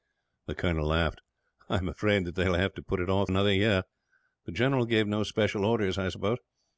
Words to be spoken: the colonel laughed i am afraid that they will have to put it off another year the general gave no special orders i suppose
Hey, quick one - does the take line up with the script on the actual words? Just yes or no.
yes